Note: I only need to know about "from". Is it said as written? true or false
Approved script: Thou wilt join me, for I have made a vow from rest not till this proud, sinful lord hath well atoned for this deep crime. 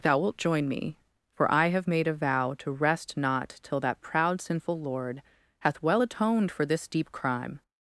false